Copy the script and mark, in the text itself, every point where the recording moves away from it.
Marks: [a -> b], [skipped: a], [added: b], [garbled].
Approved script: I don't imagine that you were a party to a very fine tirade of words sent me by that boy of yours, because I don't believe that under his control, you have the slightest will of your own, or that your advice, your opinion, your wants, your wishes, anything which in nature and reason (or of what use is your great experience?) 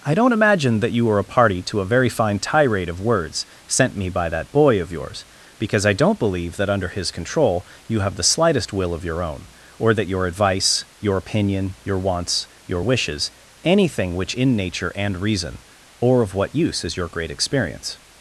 I don't imagine that you were a party to a very fine tirade of words sent me by that boy of yours, because I don't believe that under his control, you have the slightest will of your own, or that your advice, your opinion, your wants, your wishes, anything which in nature and reason (or of what use is your great experience?)